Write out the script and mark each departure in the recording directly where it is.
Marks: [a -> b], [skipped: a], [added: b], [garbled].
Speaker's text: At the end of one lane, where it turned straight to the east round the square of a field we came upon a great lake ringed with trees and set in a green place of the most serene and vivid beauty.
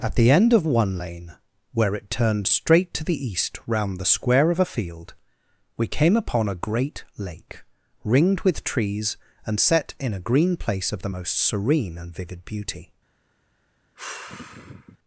At the end of one lane, where it turned straight to the east round the square of a field we came upon a great lake ringed with trees and set in a green place of the most serene and vivid beauty.